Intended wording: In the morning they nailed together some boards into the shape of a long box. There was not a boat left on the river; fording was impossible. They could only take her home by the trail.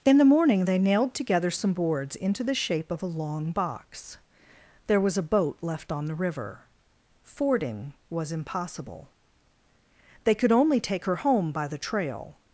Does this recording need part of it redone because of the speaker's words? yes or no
yes